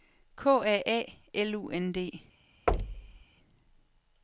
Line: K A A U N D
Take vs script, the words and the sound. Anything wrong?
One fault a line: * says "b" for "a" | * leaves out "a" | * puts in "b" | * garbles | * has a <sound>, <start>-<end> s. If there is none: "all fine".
* puts in "L"
* has a thud, 2.7-3.2 s